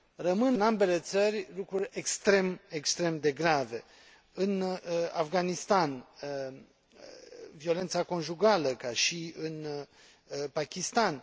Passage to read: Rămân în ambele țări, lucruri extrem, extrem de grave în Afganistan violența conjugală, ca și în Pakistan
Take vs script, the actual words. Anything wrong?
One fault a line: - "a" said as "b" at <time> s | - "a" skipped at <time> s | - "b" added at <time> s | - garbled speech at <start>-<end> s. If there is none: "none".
none